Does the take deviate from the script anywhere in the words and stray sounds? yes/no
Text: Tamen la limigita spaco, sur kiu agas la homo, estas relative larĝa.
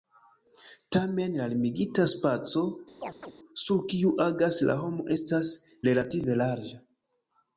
yes